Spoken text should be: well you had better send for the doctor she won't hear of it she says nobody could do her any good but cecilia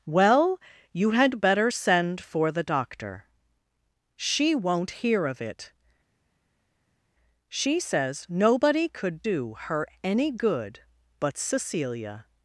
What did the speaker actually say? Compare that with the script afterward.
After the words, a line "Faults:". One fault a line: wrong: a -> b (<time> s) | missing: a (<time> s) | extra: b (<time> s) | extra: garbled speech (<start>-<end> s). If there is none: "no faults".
well you had better send for the doctor she won't hear of it she says nobody could do her any good but cecilia
Faults:
no faults